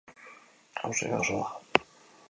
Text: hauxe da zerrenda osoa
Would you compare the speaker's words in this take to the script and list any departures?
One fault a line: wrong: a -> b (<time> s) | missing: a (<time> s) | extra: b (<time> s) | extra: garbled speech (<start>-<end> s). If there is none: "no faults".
missing: zerrenda (1.2 s)